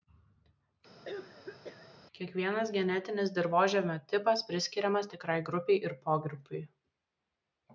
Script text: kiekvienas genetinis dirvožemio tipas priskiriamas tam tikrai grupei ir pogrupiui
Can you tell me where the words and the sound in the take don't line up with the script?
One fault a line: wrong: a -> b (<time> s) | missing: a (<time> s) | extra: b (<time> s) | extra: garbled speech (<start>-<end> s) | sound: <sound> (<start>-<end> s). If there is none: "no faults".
sound: cough (1.0-2.0 s)
missing: tam (5.1 s)